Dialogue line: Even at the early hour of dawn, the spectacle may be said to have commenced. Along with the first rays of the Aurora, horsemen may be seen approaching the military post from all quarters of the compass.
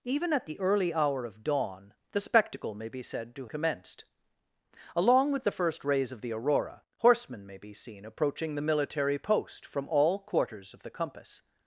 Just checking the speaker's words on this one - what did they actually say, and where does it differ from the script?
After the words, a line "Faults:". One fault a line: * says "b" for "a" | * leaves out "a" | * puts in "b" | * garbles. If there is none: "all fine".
Even at the early hour of dawn, the spectacle may be said to commenced. Along with the first rays of the Aurora, horsemen may be seen approaching the military post from all quarters of the compass.
Faults:
* leaves out "have"